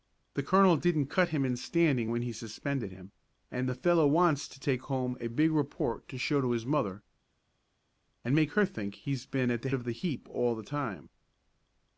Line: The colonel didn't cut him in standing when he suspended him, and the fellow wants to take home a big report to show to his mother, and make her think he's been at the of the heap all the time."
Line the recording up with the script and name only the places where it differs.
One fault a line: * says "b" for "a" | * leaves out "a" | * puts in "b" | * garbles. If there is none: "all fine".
all fine